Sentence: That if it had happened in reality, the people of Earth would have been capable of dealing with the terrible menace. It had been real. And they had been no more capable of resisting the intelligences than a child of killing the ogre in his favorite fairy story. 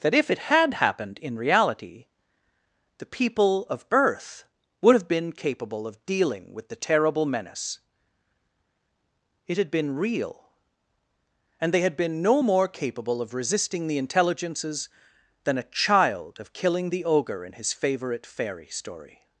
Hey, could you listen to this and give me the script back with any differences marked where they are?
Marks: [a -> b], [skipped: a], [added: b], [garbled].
That if it had happened in reality, the people of Earth would have been capable of dealing with the terrible menace. It had been real. And they had been no more capable of resisting the intelligences than a child of killing the ogre in his favorite fairy story.